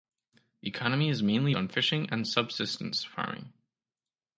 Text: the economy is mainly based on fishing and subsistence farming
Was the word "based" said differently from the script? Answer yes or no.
yes